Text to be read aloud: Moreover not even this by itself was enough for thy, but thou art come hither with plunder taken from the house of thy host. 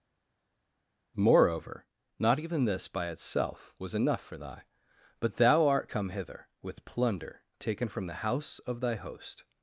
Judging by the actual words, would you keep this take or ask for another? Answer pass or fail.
pass